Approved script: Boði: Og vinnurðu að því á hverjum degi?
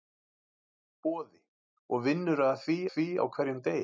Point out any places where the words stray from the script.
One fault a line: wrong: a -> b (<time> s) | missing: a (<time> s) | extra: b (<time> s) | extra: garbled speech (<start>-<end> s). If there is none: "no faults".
extra: því (2.9 s)